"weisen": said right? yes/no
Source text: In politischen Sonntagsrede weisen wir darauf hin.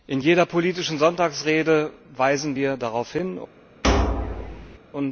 yes